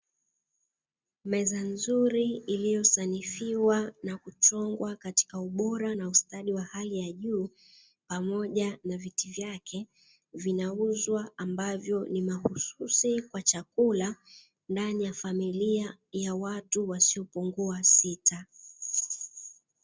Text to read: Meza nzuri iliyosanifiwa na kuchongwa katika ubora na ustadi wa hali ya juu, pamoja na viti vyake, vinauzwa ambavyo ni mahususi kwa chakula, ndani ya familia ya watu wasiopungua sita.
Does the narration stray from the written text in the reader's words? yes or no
no